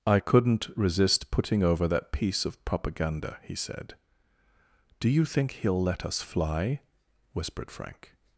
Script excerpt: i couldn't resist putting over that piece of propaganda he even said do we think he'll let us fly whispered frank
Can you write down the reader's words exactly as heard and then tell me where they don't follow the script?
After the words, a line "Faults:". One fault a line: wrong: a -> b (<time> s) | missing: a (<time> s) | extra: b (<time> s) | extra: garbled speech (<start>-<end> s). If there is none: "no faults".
i couldn't resist putting over that piece of propaganda he said do you think he'll let us fly whispered frank
Faults:
missing: even (3.5 s)
wrong: we -> you (5.1 s)